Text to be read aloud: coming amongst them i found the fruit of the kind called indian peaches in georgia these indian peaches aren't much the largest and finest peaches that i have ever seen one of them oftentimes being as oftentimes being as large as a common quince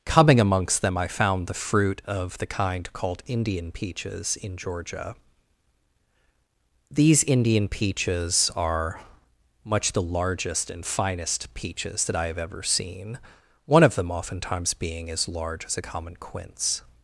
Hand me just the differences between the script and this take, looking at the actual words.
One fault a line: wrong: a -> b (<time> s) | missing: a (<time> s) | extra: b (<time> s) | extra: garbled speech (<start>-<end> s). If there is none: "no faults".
wrong: aren't -> are (8.6 s)
missing: oftentimes being as (15.3 s)